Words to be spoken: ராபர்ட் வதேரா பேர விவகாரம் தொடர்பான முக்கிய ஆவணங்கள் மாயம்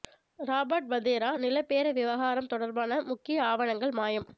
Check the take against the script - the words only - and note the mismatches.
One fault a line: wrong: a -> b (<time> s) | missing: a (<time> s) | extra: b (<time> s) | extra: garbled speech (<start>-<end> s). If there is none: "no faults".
extra: நில (1.4 s)